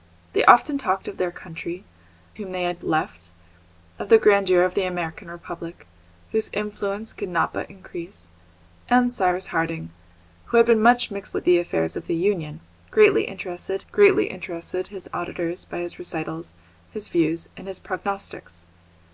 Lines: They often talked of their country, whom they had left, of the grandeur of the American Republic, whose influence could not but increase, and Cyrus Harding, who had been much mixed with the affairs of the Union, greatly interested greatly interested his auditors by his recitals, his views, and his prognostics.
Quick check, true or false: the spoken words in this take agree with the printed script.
true